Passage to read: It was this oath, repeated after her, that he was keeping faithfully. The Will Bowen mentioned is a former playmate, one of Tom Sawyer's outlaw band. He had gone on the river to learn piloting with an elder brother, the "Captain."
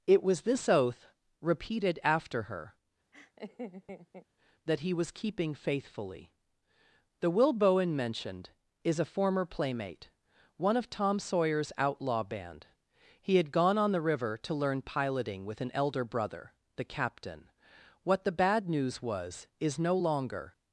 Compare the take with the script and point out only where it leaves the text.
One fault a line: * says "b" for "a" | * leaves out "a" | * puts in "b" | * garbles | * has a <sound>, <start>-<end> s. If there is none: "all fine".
* has a laugh, 3.1-4.3 s
* puts in "What the bad news was is no longer"